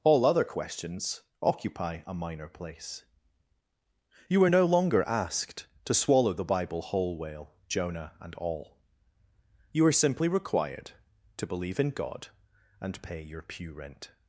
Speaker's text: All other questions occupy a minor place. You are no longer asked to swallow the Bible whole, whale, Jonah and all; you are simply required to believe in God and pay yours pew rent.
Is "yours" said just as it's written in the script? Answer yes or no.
no